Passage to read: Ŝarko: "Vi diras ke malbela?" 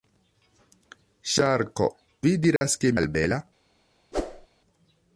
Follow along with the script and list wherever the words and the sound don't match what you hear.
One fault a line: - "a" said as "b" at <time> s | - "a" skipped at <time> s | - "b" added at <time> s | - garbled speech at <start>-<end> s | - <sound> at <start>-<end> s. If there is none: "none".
- dropout at 2.6-2.6 s
- whoosh at 4.1-4.5 s